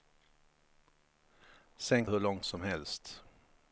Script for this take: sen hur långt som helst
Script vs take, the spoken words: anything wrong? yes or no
no